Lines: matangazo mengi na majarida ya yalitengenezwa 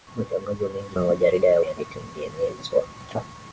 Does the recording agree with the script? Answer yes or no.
yes